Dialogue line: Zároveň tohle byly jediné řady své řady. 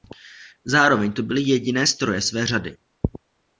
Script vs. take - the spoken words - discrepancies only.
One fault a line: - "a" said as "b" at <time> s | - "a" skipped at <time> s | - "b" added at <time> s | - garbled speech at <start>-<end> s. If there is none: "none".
- "tohle" said as "to" at 1.1 s
- "řady" said as "stroje" at 1.8 s